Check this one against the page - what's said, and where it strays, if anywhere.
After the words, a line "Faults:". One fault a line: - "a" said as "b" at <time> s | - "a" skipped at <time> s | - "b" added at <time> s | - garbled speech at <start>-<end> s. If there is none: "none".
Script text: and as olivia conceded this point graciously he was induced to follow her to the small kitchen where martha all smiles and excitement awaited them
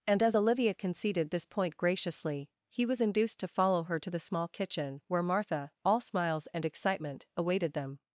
and as olivia conceded this point graciously he was induced to follow her to the small kitchen where martha all smiles and excitement awaited them
Faults:
none